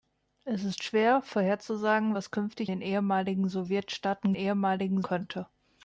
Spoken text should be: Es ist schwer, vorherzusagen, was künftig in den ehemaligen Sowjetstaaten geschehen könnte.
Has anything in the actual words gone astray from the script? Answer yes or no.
yes